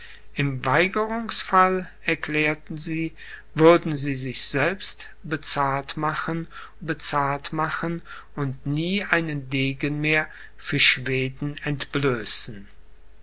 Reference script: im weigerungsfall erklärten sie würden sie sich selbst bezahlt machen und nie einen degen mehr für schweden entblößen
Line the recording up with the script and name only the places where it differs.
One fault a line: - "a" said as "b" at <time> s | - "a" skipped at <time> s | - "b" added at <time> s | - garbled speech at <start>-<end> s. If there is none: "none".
- "bezahlt machen" added at 6.8 s